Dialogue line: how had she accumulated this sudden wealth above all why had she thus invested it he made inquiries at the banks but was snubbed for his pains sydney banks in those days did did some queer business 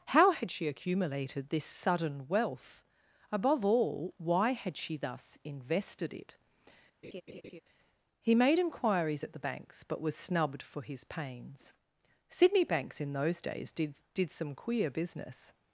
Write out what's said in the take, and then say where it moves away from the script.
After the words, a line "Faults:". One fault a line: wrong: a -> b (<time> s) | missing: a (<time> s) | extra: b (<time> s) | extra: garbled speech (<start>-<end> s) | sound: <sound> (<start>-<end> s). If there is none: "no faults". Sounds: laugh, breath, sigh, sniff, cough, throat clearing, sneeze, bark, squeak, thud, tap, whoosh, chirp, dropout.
how had she accumulated this sudden wealth above all why had she thus invested it he made inquiries at the banks but was snubbed for his pains sydney banks in those days did did some queer business
Faults:
sound: laugh (7.0-7.6 s)